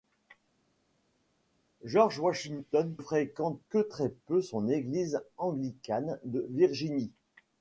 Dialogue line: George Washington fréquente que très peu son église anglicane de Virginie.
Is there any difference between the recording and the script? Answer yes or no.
no